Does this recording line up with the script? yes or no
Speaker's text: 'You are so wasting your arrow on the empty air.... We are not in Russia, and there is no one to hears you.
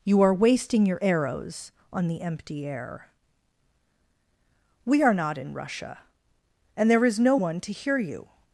no